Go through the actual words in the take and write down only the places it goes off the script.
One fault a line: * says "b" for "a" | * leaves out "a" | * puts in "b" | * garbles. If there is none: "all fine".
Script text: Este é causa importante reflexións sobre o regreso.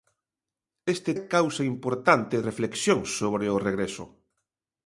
all fine